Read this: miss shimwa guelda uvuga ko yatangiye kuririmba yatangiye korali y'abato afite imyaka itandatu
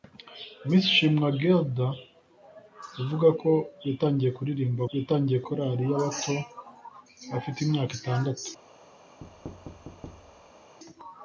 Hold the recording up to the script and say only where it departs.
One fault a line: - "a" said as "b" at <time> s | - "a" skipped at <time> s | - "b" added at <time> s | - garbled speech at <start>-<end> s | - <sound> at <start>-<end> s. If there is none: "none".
- thud at 9.2-10.8 s